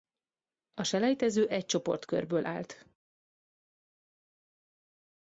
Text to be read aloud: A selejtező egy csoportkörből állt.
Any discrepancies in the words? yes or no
no